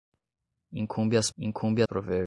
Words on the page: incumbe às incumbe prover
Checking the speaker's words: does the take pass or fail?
pass